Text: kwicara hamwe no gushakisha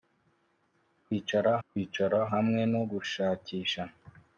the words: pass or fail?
fail